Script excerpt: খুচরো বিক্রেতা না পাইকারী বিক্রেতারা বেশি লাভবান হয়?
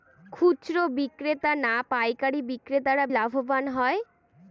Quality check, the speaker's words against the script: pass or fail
fail